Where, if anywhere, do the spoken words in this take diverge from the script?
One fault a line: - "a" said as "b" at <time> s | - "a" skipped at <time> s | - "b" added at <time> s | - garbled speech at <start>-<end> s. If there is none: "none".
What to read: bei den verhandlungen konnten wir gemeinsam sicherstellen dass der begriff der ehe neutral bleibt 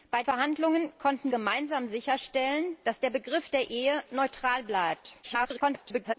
- "den" skipped at 0.2 s
- "wir" skipped at 1.3 s
- garbled speech at 5.2-6.1 s